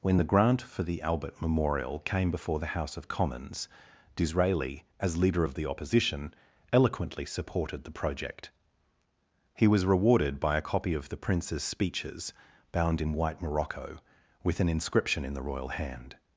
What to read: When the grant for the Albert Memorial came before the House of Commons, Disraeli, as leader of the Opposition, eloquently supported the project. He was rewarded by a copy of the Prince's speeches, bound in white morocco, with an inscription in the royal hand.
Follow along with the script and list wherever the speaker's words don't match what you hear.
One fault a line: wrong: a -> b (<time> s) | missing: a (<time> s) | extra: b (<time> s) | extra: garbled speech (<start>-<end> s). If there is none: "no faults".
no faults